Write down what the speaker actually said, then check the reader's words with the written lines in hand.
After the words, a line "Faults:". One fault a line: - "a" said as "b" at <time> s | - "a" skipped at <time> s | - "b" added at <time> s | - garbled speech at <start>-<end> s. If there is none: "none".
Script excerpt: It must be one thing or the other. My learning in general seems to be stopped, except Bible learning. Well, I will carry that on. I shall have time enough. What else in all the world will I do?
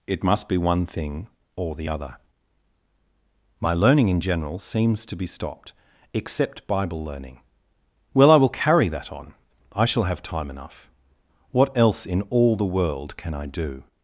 It must be one thing or the other. My learning in general seems to be stopped, except Bible learning. Well, I will carry that on. I shall have time enough. What else in all the world can I do?
Faults:
- "will" said as "can" at 13.2 s